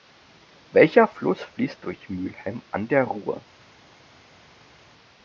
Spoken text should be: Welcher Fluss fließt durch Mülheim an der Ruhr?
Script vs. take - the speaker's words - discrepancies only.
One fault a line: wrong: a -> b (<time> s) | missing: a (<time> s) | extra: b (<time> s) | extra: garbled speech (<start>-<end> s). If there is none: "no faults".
no faults